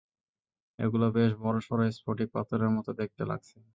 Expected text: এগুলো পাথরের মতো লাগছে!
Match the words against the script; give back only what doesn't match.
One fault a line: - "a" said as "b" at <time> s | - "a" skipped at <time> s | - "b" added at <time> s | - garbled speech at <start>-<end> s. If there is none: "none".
- "বেশ বড়সড় স্ফটিক" added at 1.1 s
- "দেখতে" added at 3.0 s